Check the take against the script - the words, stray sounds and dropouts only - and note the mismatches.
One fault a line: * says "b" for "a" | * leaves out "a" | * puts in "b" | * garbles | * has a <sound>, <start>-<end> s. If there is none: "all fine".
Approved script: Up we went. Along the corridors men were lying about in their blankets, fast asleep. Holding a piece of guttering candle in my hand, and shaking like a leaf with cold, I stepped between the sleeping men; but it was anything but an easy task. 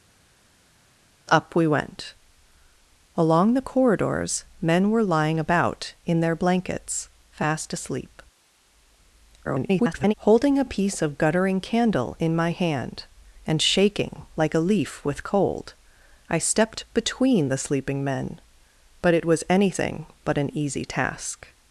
* garbles